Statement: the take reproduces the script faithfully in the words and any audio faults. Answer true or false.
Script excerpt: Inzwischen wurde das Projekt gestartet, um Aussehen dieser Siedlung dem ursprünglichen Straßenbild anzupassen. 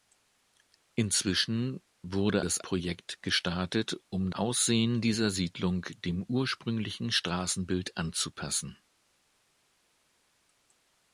true